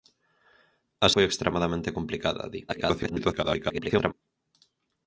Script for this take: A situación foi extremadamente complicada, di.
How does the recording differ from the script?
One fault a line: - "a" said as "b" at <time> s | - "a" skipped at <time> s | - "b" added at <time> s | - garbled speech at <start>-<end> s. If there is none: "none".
- "situación" skipped at 1.1 s
- garbled speech at 2.7-4.1 s